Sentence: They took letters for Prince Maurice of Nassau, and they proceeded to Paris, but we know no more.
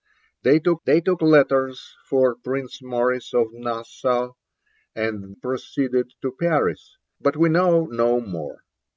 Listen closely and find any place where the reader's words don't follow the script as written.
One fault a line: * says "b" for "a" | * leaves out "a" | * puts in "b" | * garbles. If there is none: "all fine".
* puts in "they took"
* leaves out "they"